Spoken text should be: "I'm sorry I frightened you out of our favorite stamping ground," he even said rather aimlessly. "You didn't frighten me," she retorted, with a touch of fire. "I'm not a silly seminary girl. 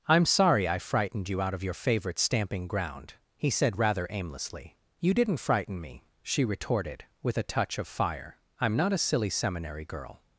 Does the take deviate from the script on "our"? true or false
true